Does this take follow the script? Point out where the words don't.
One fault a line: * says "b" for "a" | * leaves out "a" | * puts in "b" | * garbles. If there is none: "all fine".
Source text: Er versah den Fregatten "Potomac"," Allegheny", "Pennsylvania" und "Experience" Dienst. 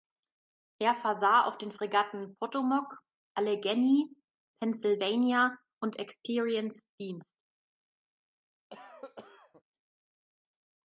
* puts in "auf"